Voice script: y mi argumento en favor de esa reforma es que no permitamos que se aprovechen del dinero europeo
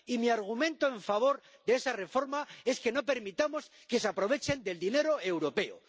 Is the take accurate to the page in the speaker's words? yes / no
yes